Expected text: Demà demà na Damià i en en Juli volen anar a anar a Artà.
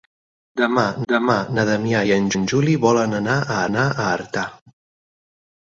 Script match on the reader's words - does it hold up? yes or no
yes